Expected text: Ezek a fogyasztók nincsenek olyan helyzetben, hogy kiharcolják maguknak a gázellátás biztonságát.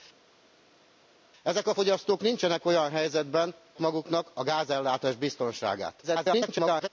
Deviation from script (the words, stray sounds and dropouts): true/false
true